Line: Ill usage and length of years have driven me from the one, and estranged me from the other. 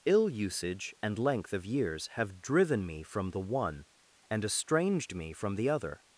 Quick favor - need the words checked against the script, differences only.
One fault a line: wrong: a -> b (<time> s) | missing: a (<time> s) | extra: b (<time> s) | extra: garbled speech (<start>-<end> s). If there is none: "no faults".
no faults